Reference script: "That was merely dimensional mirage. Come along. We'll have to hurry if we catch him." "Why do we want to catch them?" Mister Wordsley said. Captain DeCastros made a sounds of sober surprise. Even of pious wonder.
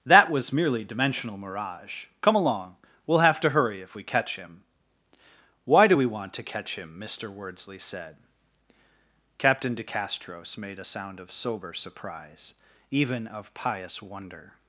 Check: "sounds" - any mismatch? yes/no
yes